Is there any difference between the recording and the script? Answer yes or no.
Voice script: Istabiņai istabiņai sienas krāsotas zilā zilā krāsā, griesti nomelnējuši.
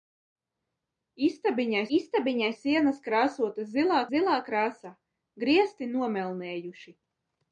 no